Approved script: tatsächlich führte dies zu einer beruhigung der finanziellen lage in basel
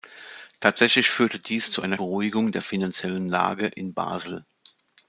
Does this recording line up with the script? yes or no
yes